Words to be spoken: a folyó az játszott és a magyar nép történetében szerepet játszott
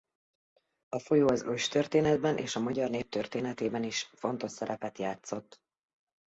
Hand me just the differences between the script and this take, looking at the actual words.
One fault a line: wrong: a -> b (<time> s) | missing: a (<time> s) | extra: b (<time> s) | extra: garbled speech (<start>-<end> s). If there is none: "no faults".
wrong: játszott -> őstörténetben (1.4 s)
extra: is fontos (3.8 s)